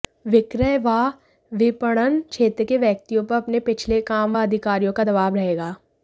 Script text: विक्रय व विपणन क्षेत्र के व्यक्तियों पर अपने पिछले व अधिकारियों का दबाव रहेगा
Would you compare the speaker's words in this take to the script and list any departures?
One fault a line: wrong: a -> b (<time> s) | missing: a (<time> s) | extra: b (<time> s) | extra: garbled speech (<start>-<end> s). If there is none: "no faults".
extra: काम (4.0 s)